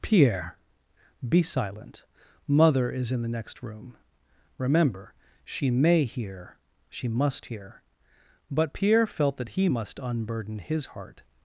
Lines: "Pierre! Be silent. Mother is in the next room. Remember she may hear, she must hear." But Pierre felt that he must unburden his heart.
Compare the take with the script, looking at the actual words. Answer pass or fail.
pass